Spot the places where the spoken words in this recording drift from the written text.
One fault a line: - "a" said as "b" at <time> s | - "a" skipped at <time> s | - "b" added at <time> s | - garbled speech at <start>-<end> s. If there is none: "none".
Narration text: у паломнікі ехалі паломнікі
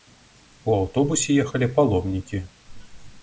- "паломнікі" said as "аўтобусе" at 0.8 s